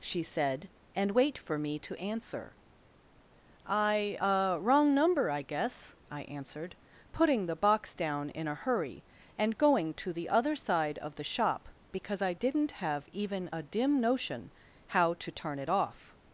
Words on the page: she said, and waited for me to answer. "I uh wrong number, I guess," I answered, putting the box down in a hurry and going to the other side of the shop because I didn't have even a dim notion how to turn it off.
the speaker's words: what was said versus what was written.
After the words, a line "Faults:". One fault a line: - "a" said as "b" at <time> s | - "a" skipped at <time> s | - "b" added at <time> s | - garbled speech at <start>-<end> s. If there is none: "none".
she said, and wait for me to answer. "I uh wrong number, I guess," I answered, putting the box down in a hurry and going to the other side of the shop because I didn't have even a dim notion how to turn it off.
Faults:
- "waited" said as "wait" at 1.1 s